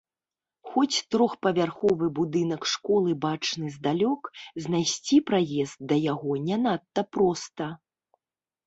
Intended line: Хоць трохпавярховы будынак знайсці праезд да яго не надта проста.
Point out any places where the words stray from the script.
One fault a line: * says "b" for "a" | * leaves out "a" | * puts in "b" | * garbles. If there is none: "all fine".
* puts in "школы бачны здалёк"